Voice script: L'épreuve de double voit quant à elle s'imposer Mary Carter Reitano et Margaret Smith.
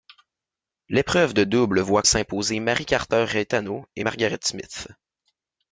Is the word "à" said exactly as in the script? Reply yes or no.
no